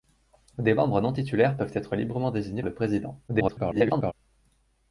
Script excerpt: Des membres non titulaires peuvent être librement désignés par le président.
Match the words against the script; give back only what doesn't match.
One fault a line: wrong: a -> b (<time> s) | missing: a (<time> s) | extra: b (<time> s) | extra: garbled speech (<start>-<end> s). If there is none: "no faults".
missing: par (2.6 s)
extra: garbled speech (3.3-4.1 s)